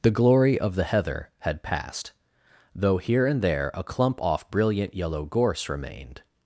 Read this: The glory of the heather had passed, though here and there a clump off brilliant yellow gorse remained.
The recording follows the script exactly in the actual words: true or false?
true